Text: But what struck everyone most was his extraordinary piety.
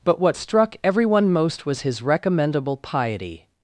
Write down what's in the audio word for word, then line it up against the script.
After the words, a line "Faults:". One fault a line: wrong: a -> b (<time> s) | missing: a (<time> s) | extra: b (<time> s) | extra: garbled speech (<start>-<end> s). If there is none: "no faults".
But what struck everyone most was his recommendable piety.
Faults:
wrong: extraordinary -> recommendable (2.0 s)